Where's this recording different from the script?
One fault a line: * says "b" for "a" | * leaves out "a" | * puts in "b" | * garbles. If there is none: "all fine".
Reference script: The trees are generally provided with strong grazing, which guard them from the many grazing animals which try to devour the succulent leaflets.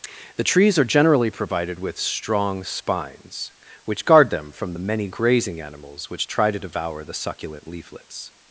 * says "spines" for "grazing"